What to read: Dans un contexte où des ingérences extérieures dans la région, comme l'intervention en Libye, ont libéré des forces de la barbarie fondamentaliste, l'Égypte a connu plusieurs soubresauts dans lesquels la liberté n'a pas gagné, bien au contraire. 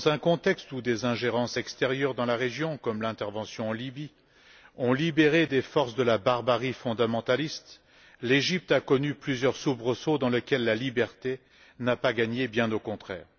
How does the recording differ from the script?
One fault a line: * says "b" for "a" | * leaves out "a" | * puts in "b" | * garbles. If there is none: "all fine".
all fine